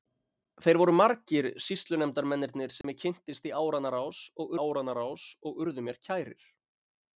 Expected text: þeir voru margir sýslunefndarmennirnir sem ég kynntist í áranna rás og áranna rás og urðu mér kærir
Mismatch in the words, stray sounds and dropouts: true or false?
true